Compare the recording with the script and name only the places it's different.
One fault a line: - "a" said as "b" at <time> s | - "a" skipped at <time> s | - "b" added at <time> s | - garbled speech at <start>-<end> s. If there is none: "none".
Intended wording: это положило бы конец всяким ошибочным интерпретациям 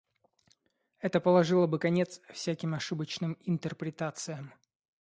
none